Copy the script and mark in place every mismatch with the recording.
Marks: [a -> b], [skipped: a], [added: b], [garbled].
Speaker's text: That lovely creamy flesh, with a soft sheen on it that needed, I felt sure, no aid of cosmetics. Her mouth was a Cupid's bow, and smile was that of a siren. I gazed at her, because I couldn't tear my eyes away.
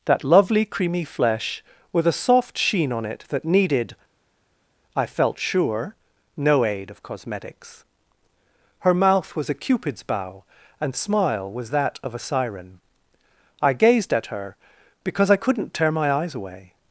That lovely creamy flesh, with a soft sheen on it that needed, I felt sure, no aid of cosmetics. Her mouth was a Cupid's bow, and smile was that of a siren. I gazed at her, because I couldn't tear my eyes away.